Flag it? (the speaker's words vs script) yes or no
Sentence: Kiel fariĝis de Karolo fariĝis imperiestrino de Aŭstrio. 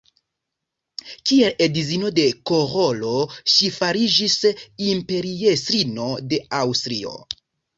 yes